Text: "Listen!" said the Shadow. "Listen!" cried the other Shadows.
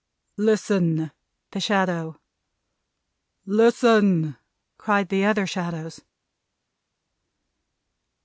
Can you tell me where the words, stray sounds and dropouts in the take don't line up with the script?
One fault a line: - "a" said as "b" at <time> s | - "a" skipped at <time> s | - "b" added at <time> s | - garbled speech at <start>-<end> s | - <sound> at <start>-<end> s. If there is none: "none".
- "said" skipped at 1.1 s